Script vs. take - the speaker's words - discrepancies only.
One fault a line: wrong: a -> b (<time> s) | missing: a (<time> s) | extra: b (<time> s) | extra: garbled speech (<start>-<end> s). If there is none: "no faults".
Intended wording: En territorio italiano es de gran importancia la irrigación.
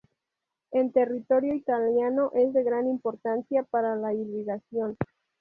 extra: para (3.6 s)